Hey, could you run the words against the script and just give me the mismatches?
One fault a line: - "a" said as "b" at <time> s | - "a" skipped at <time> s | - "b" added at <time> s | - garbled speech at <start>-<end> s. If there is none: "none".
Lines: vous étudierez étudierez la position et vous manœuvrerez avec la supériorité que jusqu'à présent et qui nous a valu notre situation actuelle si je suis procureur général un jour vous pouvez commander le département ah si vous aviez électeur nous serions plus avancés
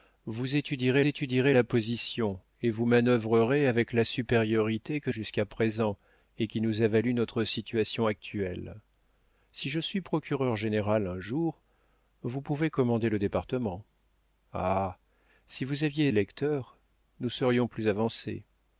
none